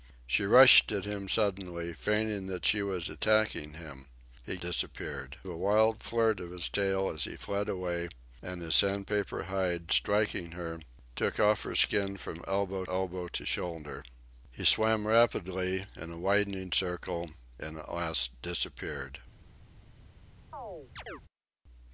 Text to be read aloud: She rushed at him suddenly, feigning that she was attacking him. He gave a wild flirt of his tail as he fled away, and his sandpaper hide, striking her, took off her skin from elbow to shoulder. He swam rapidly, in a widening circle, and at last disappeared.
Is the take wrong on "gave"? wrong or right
wrong